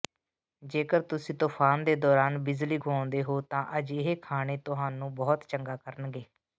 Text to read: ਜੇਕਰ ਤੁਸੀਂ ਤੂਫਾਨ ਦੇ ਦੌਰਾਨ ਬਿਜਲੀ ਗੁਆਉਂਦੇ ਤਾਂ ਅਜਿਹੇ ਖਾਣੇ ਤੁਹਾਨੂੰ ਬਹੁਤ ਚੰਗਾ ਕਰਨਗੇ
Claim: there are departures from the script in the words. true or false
true